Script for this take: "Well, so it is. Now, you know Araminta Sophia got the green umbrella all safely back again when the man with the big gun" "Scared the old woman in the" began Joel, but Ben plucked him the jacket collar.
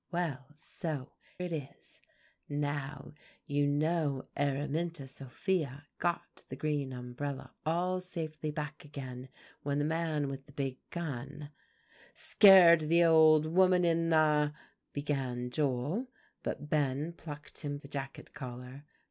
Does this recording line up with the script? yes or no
yes